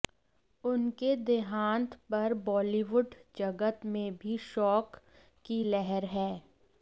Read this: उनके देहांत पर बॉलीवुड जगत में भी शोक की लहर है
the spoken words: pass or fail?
pass